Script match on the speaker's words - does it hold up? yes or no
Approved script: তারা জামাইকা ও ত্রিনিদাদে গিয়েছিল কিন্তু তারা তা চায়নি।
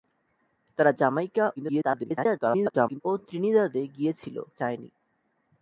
no